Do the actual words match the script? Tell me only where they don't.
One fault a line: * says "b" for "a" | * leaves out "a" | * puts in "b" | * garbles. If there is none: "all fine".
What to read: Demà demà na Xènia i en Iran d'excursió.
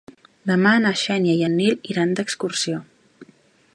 * leaves out "demà"
* puts in "Nil"